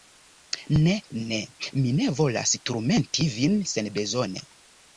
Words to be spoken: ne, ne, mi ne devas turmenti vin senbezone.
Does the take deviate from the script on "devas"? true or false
true